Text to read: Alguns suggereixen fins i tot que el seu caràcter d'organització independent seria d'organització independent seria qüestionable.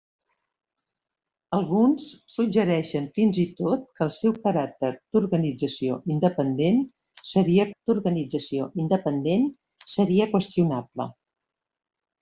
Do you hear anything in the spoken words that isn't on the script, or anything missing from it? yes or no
no